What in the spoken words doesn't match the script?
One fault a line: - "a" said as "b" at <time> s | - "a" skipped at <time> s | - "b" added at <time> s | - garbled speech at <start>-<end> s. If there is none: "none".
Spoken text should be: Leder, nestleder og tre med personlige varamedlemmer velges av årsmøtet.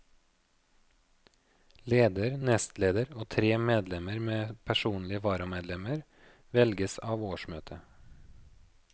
- "medlemmer" added at 3.6 s